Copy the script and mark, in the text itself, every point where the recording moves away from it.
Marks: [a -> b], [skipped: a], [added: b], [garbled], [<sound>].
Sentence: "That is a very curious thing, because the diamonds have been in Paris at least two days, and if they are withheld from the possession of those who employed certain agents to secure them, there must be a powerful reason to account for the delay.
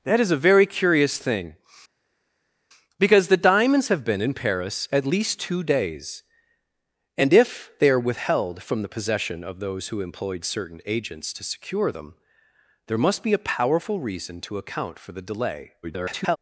"That is a very curious thing, because the diamonds have been in Paris at least two days, and if they are withheld from the possession of those who employed certain agents to secure them, there must be a powerful reason to account for the delay. [garbled]